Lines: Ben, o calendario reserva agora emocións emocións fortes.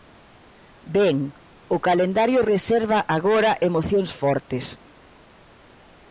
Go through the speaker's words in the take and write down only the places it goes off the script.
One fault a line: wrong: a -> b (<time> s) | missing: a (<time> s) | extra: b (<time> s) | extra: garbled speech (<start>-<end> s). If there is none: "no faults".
missing: emocións (4.1 s)